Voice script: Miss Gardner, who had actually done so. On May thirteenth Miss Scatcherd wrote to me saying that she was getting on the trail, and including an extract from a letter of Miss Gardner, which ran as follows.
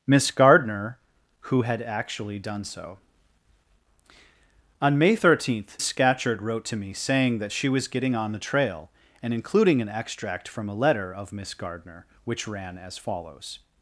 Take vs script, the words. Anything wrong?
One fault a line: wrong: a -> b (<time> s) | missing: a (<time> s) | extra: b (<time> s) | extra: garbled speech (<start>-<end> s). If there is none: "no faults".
missing: Miss (5.8 s)